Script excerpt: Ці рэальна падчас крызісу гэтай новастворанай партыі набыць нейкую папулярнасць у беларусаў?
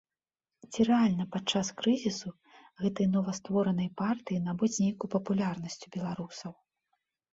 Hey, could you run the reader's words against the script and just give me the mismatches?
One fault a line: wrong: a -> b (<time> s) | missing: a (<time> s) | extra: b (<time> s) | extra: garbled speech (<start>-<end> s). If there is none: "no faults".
no faults